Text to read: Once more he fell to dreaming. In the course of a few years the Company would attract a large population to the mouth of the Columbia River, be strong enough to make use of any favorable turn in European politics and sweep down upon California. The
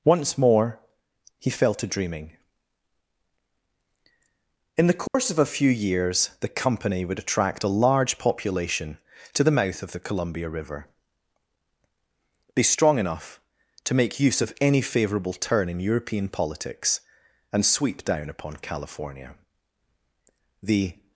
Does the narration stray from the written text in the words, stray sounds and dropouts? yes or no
yes